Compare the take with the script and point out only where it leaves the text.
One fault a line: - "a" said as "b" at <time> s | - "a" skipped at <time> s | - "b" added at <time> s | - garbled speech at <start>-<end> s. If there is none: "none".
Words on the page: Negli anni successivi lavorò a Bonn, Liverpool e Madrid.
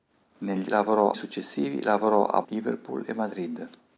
- "anni" said as "lavorò" at 0.7 s
- "Bonn" skipped at 2.4 s